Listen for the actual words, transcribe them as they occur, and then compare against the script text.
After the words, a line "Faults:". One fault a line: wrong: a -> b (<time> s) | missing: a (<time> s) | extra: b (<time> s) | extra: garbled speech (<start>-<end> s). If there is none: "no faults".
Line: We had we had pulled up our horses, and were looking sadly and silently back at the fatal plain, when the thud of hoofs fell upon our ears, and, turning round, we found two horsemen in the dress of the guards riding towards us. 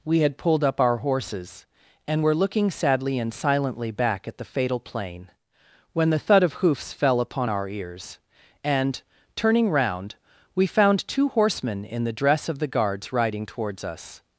We had pulled up our horses, and were looking sadly and silently back at the fatal plain, when the thud of hoofs fell upon our ears, and, turning round, we found two horsemen in the dress of the guards riding towards us.
Faults:
missing: we had (0.4 s)